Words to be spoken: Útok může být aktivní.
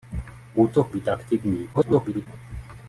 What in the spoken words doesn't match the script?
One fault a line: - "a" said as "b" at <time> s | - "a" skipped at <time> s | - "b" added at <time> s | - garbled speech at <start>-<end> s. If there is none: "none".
- "může" skipped at 0.9 s
- garbled speech at 1.7-2.3 s